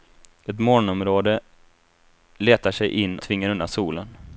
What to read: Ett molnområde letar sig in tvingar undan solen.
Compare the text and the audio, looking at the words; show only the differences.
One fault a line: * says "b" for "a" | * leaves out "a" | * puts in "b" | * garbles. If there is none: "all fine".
all fine